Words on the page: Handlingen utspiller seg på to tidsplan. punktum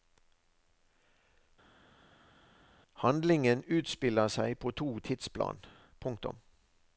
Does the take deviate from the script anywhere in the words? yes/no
no